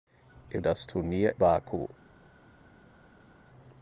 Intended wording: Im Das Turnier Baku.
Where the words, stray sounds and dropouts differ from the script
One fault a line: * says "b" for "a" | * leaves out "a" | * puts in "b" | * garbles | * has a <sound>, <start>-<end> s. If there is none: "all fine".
all fine